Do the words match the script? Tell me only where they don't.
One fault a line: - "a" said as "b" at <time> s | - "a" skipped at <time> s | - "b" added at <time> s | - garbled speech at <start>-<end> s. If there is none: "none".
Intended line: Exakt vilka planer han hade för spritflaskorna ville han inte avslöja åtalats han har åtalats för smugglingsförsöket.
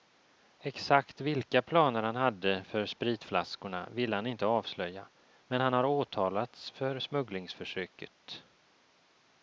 - "åtalats" said as "men" at 5.5 s